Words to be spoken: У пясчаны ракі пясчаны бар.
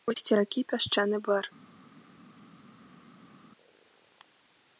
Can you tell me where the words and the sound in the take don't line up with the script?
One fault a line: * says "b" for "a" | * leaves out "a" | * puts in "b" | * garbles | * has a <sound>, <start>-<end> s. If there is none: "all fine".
* says "вусці" for "пясчаны"